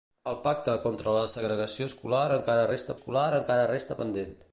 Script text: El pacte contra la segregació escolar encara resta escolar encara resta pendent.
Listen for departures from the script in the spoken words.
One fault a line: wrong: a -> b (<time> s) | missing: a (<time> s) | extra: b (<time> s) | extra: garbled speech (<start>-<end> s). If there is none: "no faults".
no faults